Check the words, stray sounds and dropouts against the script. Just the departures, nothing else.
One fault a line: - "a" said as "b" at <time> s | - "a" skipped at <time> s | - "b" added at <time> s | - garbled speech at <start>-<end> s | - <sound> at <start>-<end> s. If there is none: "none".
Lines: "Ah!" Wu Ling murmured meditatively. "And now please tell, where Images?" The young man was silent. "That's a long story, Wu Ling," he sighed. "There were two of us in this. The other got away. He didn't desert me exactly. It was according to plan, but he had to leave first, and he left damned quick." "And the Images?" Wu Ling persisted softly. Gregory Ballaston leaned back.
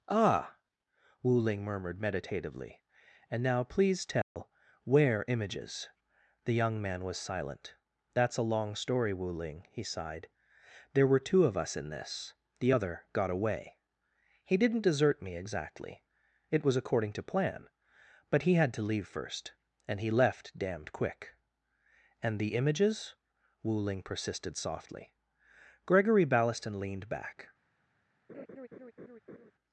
- dropout at 4.2-4.4 s
- laugh at 28.3-29.5 s